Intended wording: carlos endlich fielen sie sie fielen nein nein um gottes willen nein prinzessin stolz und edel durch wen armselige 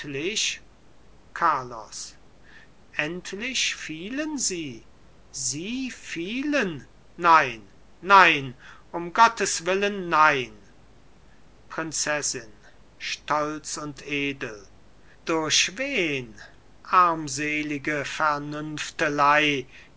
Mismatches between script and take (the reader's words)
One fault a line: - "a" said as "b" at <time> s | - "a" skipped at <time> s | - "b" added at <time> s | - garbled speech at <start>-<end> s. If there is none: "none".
none